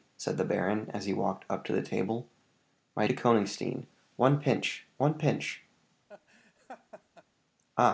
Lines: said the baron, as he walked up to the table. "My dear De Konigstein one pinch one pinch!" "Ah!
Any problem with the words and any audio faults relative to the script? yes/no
yes